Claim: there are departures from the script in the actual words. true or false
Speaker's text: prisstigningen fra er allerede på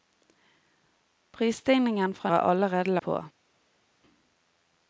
false